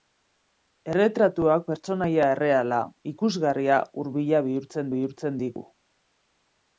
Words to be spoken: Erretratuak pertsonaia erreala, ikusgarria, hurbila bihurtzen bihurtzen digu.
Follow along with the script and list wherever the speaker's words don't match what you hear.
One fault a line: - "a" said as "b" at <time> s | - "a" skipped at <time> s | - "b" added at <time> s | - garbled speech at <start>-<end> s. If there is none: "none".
none